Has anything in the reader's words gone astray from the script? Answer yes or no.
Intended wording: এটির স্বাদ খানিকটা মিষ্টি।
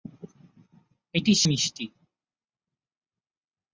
yes